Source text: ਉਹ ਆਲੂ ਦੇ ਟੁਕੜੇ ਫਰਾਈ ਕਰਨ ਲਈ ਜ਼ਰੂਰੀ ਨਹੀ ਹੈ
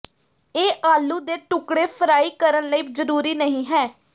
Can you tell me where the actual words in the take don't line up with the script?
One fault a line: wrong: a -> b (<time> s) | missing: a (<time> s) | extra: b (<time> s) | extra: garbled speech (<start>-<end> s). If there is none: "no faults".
wrong: ਉਹ -> ਇਹ (0.6 s)